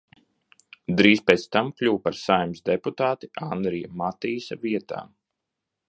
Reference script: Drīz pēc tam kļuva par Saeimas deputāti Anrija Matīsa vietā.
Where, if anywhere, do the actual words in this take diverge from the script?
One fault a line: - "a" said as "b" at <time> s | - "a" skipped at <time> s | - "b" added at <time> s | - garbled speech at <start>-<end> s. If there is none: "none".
none